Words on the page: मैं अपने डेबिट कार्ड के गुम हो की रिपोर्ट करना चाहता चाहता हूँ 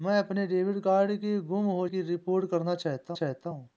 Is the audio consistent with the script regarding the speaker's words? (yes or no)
yes